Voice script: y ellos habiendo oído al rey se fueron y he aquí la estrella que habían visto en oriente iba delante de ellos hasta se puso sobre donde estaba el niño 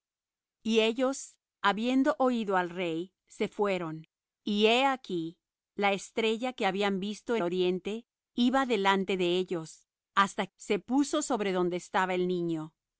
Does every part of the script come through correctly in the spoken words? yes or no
yes